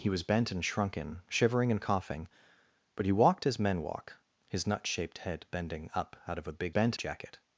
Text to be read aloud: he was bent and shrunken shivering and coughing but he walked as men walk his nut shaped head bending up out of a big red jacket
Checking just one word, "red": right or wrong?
wrong